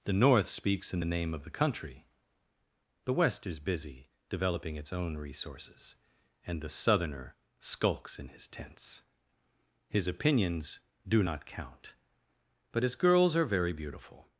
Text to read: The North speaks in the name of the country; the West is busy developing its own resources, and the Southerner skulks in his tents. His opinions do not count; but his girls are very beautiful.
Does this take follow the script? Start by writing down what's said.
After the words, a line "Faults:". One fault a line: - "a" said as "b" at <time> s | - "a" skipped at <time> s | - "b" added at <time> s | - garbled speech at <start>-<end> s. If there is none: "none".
The North speaks in the name of the country; the West is busy developing its own resources, and the Southerner skulks in his tents. His opinions do not count; but his girls are very beautiful.
Faults:
none